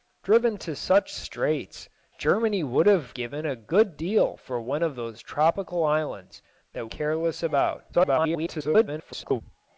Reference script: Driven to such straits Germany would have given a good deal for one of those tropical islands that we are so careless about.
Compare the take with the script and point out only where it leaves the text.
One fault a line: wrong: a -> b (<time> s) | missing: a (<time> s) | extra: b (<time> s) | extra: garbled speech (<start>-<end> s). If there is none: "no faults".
missing: we are so (6.9 s)
extra: garbled speech (7.9-9.4 s)